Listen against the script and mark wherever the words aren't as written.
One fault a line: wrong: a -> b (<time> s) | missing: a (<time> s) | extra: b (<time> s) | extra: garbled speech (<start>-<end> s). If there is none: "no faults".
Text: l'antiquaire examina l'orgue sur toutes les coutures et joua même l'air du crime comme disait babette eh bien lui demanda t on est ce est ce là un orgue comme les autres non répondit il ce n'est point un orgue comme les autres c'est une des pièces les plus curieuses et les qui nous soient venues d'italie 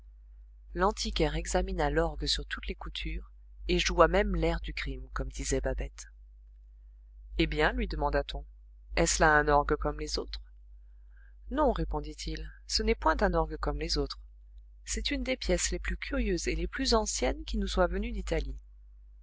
missing: est ce (9.2 s)
extra: plus anciennes (16.7 s)